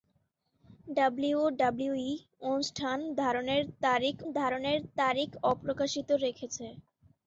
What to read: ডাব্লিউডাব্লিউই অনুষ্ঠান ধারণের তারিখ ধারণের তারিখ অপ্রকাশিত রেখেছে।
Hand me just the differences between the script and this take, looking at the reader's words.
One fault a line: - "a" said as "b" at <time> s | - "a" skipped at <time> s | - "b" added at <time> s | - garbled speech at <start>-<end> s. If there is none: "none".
none